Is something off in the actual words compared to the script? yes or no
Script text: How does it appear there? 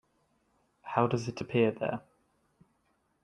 no